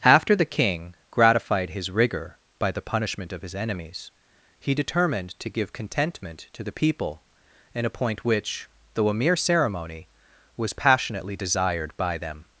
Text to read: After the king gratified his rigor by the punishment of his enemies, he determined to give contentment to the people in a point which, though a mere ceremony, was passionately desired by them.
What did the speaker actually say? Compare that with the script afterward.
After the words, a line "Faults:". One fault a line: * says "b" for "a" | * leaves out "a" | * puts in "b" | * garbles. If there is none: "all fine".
After the king gratified his rigor by the punishment of his enemies, he determined to give contentment to the people in a point which, though a mere ceremony, was passionately desired by them.
Faults:
all fine